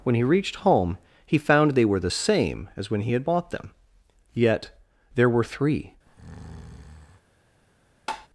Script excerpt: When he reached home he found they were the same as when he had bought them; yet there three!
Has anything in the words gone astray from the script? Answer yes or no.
yes